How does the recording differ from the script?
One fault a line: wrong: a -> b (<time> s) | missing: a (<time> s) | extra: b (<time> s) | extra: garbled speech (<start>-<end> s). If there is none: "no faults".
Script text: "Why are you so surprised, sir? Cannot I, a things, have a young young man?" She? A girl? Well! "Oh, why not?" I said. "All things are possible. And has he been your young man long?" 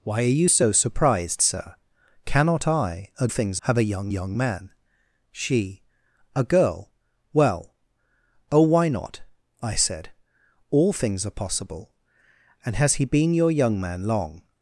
no faults